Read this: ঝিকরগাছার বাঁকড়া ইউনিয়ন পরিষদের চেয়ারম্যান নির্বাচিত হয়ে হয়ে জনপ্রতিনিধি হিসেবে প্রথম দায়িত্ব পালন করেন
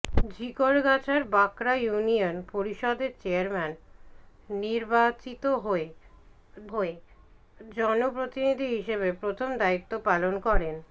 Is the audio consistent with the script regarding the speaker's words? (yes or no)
yes